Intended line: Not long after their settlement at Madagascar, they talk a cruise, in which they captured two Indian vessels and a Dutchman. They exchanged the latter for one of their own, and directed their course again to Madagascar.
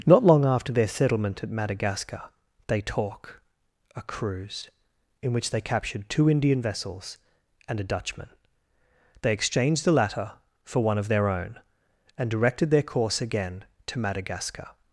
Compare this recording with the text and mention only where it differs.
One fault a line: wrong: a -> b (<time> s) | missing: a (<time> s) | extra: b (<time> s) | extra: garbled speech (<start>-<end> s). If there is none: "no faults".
no faults